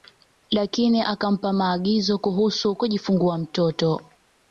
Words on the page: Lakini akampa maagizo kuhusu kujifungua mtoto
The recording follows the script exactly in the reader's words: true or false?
true